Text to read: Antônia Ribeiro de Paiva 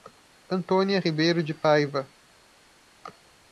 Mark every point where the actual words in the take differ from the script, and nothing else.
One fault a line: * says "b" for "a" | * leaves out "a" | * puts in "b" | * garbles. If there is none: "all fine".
all fine